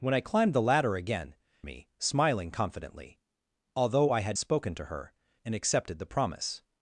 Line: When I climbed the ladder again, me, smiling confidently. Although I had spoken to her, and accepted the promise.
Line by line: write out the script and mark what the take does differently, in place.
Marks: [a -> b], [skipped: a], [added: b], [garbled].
When I climbed the ladder again, me, smiling confidently. Although I had spoken to her, and accepted the promise.